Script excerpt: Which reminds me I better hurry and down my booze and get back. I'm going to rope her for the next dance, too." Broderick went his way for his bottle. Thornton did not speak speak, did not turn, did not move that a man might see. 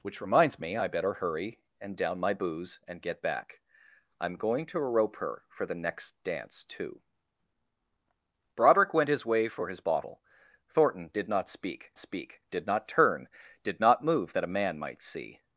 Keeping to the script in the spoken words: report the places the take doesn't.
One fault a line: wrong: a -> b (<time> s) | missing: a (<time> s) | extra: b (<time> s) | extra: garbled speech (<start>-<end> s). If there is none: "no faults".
no faults